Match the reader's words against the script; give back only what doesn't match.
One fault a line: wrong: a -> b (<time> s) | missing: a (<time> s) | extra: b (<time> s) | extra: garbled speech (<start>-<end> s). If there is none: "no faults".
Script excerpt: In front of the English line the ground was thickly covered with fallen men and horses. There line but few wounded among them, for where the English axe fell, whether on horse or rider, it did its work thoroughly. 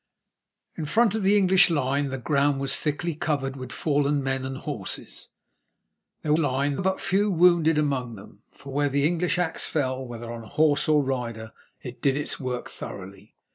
no faults